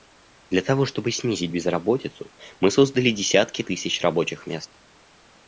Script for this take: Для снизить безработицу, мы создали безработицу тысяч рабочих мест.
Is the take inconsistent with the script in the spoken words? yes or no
yes